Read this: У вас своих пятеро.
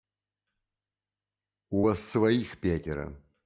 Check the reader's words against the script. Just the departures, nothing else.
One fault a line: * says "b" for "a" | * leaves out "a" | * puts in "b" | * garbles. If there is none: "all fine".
all fine